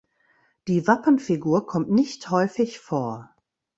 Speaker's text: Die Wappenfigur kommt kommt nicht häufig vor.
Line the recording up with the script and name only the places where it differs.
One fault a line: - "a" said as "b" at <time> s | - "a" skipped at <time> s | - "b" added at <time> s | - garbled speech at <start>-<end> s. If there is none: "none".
- "kommt" skipped at 1.9 s